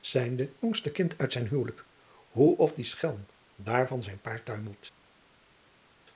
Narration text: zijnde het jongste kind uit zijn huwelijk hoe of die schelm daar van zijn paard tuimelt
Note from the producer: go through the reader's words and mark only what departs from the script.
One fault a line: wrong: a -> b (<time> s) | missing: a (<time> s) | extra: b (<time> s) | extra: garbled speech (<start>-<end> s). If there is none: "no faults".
missing: het (0.5 s)